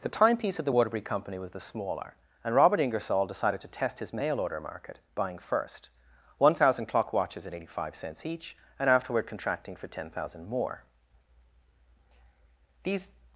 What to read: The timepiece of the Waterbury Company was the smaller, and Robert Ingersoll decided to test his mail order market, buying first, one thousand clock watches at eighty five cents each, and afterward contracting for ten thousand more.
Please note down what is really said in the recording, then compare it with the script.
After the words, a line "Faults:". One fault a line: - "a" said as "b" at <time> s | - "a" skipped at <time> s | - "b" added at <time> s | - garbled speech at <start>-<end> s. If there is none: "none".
The timepiece of the Waterbury Company was the smaller, and Robert Ingersoll decided to test his mail order market, buying first, one thousand clock watches at eighty five cents each, and afterward contracting for ten thousand more. These
Faults:
- "These" added at 12.8 s